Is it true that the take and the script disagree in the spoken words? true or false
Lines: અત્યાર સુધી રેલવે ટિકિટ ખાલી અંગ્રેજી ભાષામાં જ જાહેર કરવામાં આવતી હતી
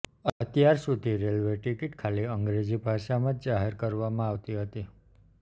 false